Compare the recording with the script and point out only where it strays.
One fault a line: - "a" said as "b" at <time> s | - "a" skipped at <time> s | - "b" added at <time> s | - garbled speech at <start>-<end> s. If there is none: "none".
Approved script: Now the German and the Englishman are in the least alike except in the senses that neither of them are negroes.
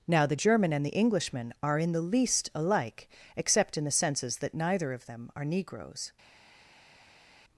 none